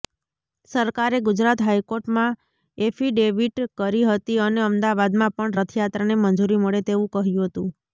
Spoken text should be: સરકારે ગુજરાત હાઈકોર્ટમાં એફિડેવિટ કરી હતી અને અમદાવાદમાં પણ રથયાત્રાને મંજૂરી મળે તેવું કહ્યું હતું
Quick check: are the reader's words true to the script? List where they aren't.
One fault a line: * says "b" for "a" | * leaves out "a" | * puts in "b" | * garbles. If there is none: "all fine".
all fine